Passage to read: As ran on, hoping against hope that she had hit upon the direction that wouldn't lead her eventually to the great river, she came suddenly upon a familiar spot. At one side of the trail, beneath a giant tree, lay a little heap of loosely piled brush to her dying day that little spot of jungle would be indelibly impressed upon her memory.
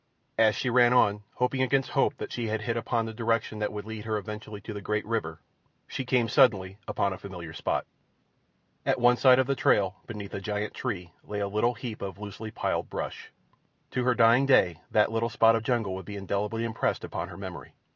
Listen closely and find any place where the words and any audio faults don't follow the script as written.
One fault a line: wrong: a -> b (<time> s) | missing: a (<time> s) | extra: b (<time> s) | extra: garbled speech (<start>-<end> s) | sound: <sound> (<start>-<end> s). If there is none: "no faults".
extra: she (0.6 s)
wrong: wouldn't -> would (3.7 s)